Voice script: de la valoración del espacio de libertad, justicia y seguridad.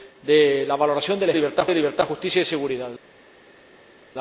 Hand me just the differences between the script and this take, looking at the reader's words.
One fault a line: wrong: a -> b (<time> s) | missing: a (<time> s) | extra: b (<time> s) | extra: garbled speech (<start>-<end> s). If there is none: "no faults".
wrong: espacio -> libertad (1.3 s)